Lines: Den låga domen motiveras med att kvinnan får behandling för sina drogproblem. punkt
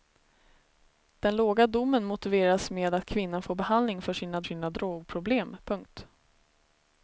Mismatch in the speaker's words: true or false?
true